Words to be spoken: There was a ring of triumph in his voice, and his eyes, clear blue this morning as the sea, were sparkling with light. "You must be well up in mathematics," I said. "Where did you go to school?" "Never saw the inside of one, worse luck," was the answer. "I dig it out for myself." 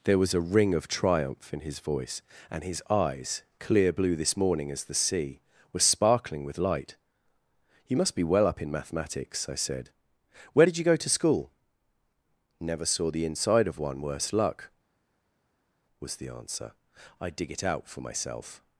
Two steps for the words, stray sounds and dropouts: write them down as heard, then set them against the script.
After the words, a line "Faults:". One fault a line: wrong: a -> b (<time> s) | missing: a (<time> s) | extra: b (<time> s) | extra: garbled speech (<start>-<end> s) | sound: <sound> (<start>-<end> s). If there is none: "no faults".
There was a ring of triumph in his voice, and his eyes, clear blue this morning as the sea, were sparkling with light. "You must be well up in mathematics," I said. "Where did you go to school?" "Never saw the inside of one, worse luck," was the answer. "I dig it out for myself."
Faults:
no faults